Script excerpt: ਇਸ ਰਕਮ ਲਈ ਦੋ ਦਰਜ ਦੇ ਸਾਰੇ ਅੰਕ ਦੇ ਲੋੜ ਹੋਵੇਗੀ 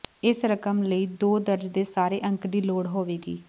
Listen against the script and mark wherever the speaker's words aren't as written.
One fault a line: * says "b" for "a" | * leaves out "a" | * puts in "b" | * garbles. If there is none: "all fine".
* says "ਦੀ" for "ਦੇ"